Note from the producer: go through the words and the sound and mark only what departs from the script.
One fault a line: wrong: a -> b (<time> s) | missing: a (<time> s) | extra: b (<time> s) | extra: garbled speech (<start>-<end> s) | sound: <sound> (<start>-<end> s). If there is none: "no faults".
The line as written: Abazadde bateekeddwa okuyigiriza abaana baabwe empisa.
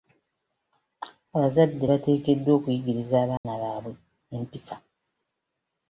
sound: dropout (3.4-3.4 s)